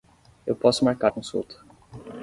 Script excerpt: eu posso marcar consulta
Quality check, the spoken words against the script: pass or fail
pass